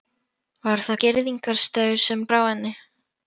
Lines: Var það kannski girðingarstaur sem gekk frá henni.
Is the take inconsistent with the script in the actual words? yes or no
yes